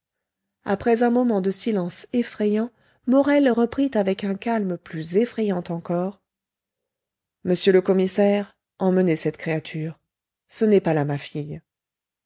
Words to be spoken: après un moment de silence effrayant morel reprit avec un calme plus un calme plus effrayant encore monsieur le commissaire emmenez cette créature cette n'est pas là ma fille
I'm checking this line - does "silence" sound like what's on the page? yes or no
yes